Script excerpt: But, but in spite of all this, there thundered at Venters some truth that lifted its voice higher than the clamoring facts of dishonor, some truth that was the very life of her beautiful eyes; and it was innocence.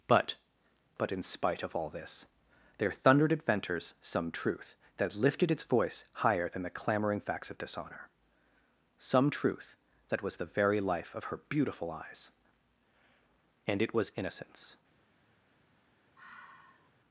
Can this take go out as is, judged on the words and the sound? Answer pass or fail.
fail